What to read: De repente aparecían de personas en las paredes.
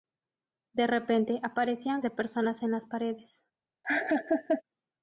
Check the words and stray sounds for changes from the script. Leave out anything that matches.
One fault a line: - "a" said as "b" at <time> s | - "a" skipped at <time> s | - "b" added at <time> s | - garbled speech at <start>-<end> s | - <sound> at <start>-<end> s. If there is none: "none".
- laugh at 3.8-4.6 s